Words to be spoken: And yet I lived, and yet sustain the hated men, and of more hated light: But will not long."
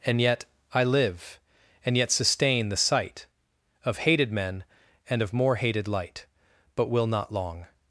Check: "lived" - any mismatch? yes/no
yes